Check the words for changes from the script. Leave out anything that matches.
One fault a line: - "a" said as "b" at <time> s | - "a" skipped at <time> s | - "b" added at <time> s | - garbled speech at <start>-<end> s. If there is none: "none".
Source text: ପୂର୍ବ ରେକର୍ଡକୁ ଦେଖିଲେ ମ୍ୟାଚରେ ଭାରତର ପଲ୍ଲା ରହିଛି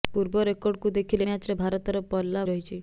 none